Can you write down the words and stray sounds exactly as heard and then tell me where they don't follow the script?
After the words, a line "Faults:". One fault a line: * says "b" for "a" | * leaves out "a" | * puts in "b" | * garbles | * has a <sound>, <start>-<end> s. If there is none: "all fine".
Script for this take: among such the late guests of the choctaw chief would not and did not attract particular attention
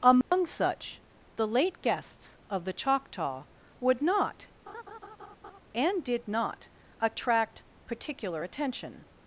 among such the late guests of the choctaw would not and did not attract particular attention
Faults:
* has a dropout, 0.2-0.3 s
* leaves out "chief"
* has a laugh, 4.7-5.6 s